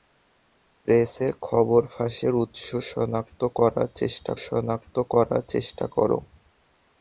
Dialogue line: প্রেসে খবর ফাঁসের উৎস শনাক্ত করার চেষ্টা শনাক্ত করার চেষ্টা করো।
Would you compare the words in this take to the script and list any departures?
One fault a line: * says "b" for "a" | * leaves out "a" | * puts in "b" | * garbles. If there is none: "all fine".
all fine